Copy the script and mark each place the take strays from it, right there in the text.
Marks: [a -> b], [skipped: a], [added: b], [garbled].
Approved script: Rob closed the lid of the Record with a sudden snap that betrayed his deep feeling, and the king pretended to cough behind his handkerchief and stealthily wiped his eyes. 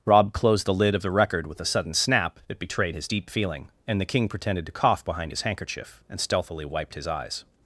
Rob closed the lid of the Record with a sudden snap that betrayed his deep feeling, and the king pretended to cough behind his handkerchief and stealthily wiped his eyes.